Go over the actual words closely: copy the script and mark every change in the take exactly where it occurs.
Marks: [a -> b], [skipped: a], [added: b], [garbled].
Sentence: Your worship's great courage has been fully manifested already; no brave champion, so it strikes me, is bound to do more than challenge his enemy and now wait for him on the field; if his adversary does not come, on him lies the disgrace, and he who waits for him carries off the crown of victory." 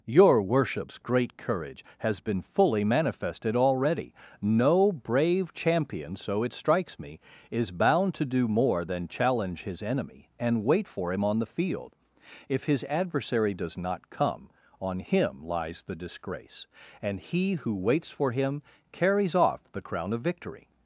Your worship's great courage has been fully manifested already; no brave champion, so it strikes me, is bound to do more than challenge his enemy and [skipped: now] wait for him on the field; if his adversary does not come, on him lies the disgrace, and he who waits for him carries off the crown of victory."